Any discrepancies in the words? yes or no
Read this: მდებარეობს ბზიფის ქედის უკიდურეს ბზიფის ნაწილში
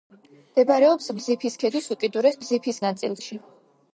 no